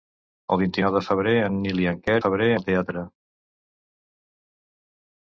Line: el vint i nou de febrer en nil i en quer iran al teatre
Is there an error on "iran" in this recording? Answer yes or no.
yes